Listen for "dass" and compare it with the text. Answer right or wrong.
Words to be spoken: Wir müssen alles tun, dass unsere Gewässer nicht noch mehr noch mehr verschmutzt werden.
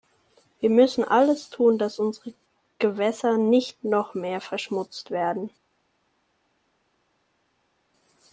right